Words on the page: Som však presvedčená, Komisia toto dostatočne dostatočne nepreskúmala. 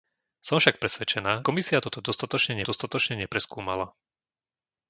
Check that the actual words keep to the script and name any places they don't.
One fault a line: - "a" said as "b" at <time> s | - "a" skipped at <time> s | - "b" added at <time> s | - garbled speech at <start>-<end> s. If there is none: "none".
none